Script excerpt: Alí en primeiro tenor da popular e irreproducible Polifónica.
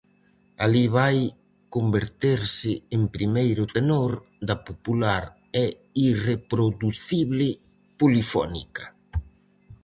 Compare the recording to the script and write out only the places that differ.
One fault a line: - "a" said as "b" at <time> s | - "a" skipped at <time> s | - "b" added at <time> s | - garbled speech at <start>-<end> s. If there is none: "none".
- "vai converterse" added at 1.0 s